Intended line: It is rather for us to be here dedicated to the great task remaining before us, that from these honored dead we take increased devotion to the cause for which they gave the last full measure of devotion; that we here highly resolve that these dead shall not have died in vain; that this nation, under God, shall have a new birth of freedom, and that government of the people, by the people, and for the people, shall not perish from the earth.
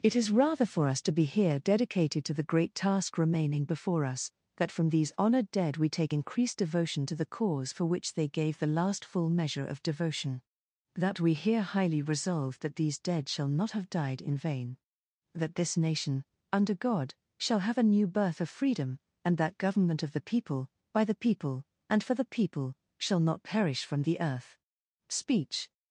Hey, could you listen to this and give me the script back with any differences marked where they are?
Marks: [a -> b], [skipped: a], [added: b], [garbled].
It is rather for us to be here dedicated to the great task remaining before us, that from these honored dead we take increased devotion to the cause for which they gave the last full measure of devotion; that we here highly resolve that these dead shall not have died in vain; that this nation, under God, shall have a new birth of freedom, and that government of the people, by the people, and for the people, shall not perish from the earth. [added: Speech]